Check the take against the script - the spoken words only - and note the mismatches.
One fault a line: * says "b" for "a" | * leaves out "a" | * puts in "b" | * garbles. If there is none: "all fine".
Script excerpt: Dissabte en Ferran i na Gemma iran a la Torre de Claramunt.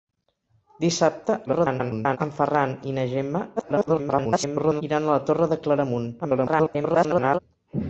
* garbles
* garbles
* garbles